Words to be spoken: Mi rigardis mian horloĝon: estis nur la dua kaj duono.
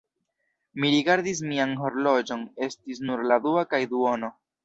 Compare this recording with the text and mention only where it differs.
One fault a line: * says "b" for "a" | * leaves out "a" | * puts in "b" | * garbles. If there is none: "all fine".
all fine